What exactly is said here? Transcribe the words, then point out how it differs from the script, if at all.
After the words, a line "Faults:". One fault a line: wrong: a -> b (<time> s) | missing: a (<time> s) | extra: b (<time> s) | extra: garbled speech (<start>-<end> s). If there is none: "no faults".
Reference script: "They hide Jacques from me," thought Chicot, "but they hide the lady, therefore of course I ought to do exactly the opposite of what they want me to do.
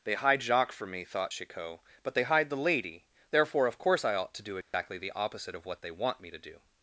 "They hide Jacques from me," thought Chicot, "but they hide the lady, therefore of course I ought to do exactly the opposite of what they want me to do.
Faults:
no faults